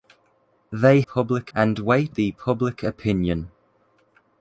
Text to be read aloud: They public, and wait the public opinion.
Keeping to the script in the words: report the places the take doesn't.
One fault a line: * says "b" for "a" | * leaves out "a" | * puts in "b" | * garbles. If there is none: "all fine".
all fine